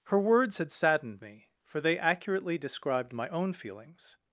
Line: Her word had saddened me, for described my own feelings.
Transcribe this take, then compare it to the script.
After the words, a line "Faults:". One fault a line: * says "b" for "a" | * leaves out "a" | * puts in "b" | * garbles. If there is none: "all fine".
Her words had saddened me, for they accurately described my own feelings.
Faults:
* says "words" for "word"
* puts in "they accurately"